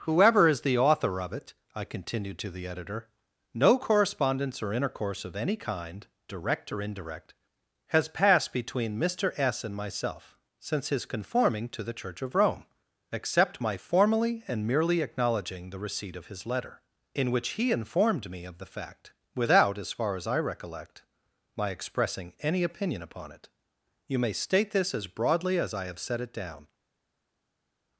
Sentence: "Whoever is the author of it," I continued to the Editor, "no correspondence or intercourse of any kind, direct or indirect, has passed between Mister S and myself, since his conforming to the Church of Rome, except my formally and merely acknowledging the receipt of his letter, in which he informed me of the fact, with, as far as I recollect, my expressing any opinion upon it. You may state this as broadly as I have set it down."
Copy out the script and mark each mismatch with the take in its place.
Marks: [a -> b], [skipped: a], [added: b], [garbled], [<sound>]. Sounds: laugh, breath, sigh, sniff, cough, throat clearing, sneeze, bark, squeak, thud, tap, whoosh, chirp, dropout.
"Whoever is the author of it," I continued to the Editor, "no correspondence or intercourse of any kind, direct or indirect, has passed between Mister S and myself, since his conforming to the Church of Rome, except my formally and merely acknowledging the receipt of his letter, in which he informed me of the fact, [with, -> without] as far as I recollect, my expressing any opinion upon it. You may state this as broadly as I have set it down."